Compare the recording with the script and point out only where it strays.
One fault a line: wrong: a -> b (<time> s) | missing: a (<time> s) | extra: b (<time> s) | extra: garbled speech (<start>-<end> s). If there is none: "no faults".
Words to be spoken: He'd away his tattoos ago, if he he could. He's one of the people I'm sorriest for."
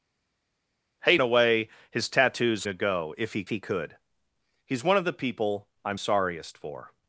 no faults